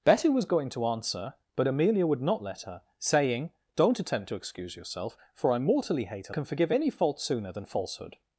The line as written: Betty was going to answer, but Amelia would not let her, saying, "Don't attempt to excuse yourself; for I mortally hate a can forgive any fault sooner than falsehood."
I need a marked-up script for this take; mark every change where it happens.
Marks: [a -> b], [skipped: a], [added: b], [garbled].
Betty was going to answer, but Amelia would not let her, saying, "Don't attempt to excuse yourself; for I mortally hate a can forgive any fault sooner than falsehood."